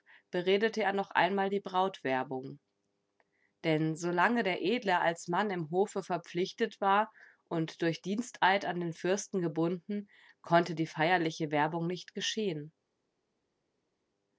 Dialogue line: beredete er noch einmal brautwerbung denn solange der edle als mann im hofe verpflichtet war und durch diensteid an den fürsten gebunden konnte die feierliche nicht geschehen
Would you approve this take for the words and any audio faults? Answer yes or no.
no